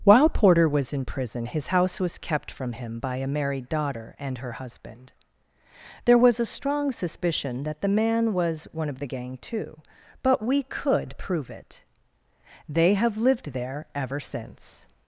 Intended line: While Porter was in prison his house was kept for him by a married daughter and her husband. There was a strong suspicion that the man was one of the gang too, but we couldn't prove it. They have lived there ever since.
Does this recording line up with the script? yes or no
no